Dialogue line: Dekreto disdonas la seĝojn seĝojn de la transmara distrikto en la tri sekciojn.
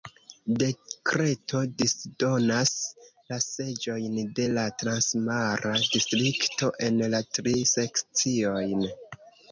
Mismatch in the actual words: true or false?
true